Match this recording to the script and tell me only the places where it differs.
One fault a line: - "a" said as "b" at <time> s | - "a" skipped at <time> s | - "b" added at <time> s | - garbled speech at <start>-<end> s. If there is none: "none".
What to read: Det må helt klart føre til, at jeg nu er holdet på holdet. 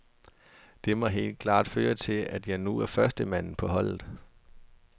- "holdet" said as "førstemanden" at 2.9 s